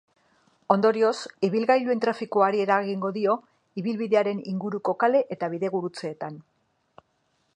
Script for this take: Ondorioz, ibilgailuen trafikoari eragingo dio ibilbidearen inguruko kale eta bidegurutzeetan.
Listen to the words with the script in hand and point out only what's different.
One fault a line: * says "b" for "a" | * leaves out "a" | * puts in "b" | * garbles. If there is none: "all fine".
all fine